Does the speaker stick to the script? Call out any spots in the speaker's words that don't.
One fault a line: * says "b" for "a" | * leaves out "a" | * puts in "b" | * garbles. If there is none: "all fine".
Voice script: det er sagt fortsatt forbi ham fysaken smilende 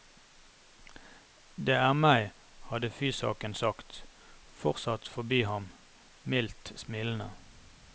* puts in "meg hadde fysaken"
* says "mildt" for "fysaken"